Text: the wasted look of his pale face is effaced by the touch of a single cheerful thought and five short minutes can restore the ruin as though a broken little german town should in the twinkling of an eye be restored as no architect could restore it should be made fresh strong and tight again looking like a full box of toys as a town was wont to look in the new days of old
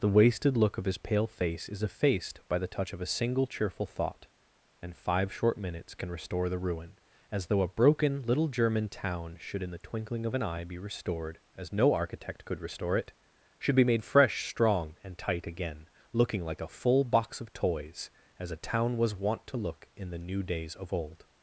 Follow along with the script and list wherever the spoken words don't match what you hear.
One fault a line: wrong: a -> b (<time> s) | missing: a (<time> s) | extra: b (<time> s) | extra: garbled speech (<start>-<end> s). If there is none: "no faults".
no faults